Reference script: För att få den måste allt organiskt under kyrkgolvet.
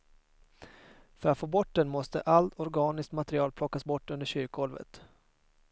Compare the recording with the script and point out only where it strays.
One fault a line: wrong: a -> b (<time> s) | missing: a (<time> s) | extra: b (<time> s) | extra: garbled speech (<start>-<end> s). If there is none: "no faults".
extra: bort (1.5 s)
extra: material plockas bort (3.1 s)